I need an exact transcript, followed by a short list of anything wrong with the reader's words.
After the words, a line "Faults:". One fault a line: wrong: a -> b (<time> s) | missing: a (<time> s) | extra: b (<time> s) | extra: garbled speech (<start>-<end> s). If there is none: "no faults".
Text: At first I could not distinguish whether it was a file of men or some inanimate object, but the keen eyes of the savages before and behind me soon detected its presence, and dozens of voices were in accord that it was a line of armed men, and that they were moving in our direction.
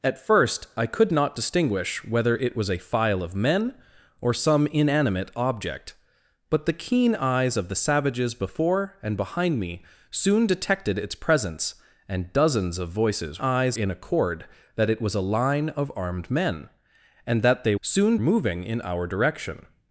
At first I could not distinguish whether it was a file of men or some inanimate object, but the keen eyes of the savages before and behind me soon detected its presence, and dozens of voices eyes in accord that it was a line of armed men, and that they soon moving in our direction.
Faults:
wrong: were -> eyes (13.4 s)
wrong: were -> soon (17.8 s)